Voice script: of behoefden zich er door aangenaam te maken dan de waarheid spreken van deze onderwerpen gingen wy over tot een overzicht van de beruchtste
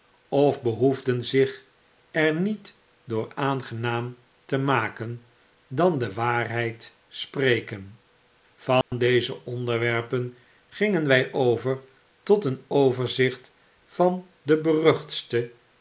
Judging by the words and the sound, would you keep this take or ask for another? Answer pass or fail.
fail